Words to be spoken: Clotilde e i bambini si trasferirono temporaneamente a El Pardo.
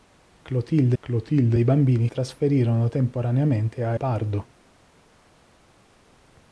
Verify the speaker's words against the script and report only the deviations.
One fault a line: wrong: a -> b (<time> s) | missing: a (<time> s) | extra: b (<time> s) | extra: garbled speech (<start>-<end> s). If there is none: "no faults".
extra: clotilde (1.0 s)
missing: si (2.1 s)
missing: El (4.0 s)